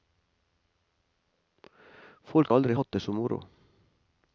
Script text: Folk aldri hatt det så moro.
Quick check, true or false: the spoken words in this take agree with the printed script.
true